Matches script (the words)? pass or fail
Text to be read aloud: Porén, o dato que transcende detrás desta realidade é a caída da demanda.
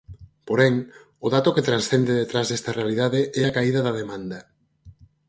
pass